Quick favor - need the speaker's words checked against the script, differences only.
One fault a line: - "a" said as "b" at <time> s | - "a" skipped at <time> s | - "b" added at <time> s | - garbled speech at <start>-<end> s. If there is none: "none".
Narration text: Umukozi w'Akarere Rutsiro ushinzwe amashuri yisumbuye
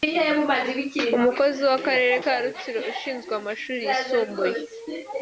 - "ka" added at 2.2 s